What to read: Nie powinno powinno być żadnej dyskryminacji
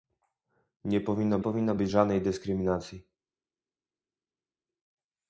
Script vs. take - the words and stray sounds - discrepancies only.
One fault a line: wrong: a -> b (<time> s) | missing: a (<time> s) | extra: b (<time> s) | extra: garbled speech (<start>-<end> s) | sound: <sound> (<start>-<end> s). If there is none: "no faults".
no faults